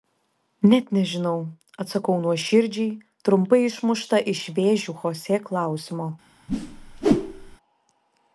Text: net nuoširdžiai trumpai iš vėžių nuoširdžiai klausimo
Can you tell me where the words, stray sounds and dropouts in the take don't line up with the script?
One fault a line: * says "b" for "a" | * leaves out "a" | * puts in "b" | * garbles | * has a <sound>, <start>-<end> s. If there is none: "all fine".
* puts in "nežinau atsakau"
* puts in "išmušta"
* says "chosė" for "nuoširdžiai"
* has a whoosh, 6.5-7.6 s